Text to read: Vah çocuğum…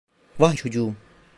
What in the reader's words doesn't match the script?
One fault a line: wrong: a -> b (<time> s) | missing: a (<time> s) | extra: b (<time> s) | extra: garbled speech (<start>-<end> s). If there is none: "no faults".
no faults